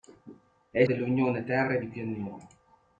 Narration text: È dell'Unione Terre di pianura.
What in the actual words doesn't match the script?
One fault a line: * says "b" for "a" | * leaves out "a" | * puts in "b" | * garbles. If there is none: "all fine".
all fine